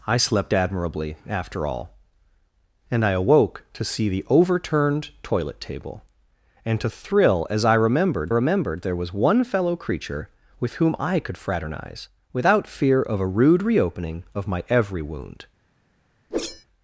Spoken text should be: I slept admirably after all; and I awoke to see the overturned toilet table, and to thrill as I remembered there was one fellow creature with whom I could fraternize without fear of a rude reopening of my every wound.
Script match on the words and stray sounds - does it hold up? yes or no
no